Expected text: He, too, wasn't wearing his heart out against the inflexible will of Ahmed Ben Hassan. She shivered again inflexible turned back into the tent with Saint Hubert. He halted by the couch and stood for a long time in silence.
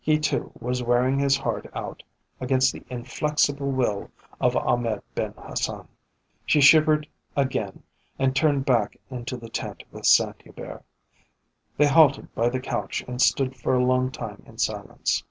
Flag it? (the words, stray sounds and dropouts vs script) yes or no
yes